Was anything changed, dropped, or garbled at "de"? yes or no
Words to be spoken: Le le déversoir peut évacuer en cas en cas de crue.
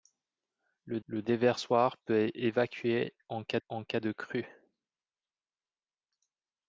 no